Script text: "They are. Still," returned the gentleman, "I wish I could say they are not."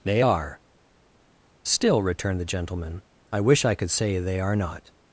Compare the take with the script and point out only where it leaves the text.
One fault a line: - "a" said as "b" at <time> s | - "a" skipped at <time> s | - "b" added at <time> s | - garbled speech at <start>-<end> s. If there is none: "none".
none